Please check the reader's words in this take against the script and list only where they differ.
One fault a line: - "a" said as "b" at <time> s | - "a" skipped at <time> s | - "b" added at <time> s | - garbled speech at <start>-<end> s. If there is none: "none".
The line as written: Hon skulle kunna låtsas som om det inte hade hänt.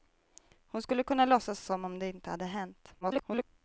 - garbled speech at 3.0-3.4 s